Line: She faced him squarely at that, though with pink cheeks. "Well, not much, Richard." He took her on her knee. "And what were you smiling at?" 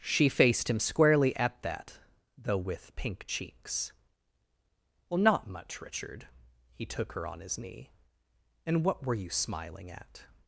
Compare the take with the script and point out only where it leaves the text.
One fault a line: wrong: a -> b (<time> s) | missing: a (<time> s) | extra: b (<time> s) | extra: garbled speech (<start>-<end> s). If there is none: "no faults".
wrong: her -> his (7.4 s)